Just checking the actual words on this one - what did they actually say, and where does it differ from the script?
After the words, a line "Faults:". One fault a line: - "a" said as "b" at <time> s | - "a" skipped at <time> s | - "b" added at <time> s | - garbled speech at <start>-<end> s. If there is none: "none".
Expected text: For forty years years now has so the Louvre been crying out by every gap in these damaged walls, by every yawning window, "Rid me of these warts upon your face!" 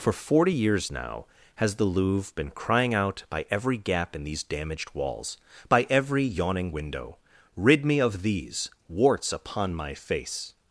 For forty years now has the Louvre been crying out by every gap in these damaged walls, by every yawning window, "Rid me of these warts upon my face!"
Faults:
- "years" skipped at 0.9 s
- "so" skipped at 1.8 s
- "your" said as "my" at 9.7 s